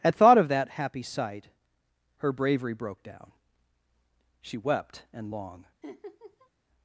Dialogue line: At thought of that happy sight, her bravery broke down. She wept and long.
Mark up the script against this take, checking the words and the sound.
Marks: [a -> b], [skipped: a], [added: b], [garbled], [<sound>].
At thought of that happy sight, her bravery broke down. She wept and long. [laugh]